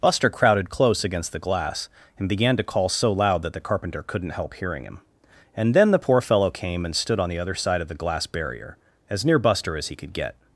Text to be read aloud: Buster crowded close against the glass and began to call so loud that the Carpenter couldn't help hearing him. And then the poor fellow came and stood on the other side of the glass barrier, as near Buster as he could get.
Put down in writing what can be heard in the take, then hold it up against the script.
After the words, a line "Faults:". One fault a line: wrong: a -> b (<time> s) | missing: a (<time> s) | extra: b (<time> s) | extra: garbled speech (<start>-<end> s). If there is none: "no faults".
Buster crowded close against the glass and began to call so loud that the Carpenter couldn't help hearing him. And then the poor fellow came and stood on the other side of the glass barrier, as near Buster as he could get.
Faults:
no faults